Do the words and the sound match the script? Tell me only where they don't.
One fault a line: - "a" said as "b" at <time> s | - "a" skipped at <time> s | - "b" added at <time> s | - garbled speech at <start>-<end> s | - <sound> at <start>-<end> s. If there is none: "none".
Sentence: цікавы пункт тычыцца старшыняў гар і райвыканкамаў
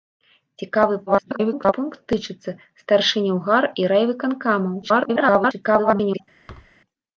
- garbled speech at 1.1-1.7 s
- garbled speech at 4.8-6.2 s
- thud at 6.5-6.7 s